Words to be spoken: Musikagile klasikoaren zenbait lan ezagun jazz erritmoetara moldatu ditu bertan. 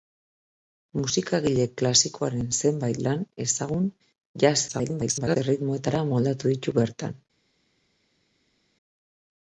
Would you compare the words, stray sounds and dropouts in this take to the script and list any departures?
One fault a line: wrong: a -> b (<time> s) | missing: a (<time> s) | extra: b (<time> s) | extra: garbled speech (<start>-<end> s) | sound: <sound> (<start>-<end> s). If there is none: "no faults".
extra: garbled speech (4.7-5.4 s)